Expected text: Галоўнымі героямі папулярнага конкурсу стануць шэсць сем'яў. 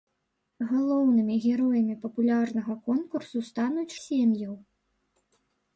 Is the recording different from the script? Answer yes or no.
yes